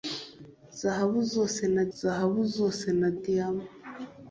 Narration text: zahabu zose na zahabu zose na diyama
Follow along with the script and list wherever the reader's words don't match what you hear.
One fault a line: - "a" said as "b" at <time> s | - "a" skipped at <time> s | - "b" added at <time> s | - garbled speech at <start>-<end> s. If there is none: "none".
none